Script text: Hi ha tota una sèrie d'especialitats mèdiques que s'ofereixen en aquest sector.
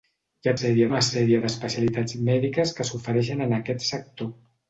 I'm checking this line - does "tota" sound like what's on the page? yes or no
no